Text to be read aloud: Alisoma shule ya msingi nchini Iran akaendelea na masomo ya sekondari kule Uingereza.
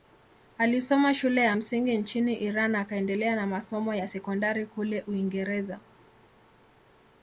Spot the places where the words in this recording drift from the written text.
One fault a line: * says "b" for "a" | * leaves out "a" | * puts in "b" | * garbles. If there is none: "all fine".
all fine